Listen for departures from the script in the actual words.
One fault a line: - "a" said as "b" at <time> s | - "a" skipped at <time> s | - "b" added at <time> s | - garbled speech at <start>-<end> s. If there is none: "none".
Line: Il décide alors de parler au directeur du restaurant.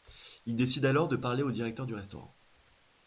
none